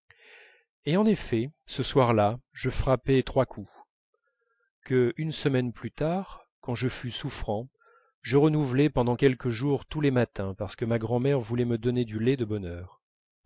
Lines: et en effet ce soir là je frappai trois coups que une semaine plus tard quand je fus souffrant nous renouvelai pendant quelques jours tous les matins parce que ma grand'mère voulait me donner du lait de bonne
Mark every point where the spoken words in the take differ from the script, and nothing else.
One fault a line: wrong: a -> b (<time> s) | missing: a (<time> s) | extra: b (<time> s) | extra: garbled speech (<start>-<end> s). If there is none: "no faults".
wrong: nous -> je (8.2 s)